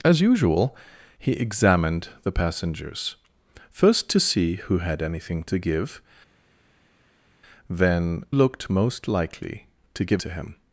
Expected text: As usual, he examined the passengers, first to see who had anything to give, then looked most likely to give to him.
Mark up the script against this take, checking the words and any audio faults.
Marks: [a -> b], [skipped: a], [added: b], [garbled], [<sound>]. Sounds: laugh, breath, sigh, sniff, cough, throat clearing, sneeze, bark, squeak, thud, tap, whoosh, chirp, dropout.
As usual, he examined the passengers, first to see who had anything to give, then looked most likely to give to him.